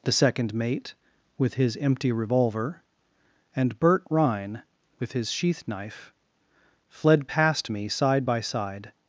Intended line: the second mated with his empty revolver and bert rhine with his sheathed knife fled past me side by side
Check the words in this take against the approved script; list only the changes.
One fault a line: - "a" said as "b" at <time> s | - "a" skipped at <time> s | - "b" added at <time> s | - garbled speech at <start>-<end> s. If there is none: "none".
- "mated" said as "mate" at 0.6 s
- "sheathed" said as "sheath" at 5.3 s